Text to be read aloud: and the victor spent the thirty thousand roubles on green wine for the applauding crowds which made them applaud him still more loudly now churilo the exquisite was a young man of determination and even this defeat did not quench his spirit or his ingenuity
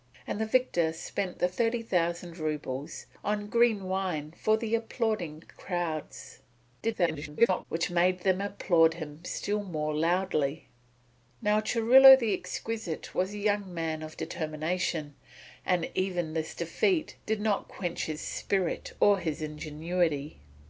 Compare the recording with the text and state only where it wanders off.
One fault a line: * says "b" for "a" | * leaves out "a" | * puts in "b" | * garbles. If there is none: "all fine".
* garbles